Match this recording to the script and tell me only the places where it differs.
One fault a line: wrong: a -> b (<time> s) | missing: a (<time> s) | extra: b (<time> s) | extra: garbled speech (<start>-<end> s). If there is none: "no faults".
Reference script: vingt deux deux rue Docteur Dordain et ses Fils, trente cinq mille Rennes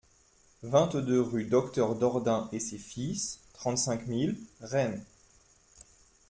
missing: deux (1.2 s)